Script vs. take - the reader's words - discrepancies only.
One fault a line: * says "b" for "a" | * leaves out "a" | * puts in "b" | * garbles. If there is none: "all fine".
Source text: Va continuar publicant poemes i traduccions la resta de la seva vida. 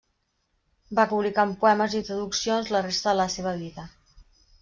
* leaves out "continuar"